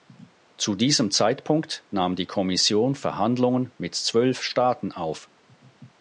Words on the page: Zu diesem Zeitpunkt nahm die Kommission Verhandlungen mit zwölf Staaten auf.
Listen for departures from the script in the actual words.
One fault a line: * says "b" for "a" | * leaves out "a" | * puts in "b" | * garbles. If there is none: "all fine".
all fine